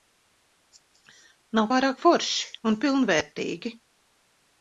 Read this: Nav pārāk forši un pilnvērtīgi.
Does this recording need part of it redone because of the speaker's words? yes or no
no